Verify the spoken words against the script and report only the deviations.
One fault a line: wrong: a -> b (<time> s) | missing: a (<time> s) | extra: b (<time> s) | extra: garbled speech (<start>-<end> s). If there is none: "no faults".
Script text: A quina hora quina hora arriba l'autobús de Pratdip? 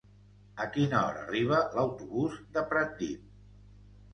missing: quina hora (1.2 s)